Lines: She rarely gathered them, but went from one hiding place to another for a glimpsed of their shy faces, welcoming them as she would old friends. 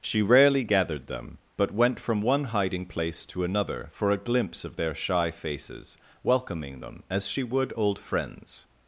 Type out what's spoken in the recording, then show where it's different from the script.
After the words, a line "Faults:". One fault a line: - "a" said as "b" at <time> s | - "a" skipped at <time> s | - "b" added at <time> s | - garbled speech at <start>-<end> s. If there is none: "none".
She rarely gathered them, but went from one hiding place to another for a glimpse of their shy faces, welcoming them as she would old friends.
Faults:
- "glimpsed" said as "glimpse" at 4.2 s